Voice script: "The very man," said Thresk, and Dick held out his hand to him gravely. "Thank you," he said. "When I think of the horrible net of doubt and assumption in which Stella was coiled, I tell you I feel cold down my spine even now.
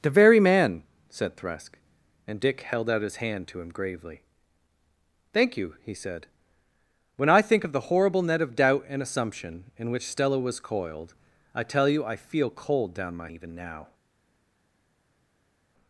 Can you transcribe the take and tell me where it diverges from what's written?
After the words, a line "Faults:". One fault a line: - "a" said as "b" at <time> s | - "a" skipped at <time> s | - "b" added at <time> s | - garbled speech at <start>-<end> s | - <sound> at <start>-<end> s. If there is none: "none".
"The very man," said Thresk, and Dick held out his hand to him gravely. "Thank you," he said. "When I think of the horrible net of doubt and assumption in which Stella was coiled, I tell you I feel cold down my even now.
Faults:
- "spine" skipped at 13.3 s